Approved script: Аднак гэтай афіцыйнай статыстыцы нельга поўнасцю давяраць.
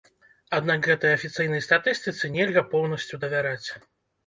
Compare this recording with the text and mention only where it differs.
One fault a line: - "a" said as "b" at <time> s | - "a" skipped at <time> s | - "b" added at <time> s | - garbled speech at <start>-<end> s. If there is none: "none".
none